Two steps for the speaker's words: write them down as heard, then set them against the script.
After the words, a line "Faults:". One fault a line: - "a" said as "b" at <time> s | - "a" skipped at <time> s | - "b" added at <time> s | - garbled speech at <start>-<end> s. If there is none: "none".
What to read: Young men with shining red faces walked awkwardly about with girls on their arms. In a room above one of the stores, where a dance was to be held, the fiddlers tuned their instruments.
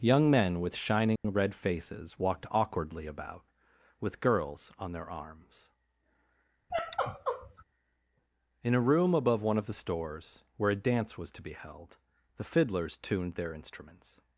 Young men with shining red faces walked awkwardly about with girls on their arms. In a room above one of the stores, where a dance was to be held, the fiddlers tuned their instruments.
Faults:
none